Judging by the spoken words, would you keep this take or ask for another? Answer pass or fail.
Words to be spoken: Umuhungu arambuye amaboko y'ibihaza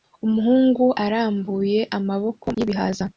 pass